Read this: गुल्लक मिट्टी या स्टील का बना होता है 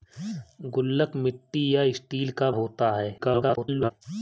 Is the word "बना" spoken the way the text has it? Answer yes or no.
no